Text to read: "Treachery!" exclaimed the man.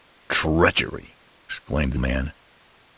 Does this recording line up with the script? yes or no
yes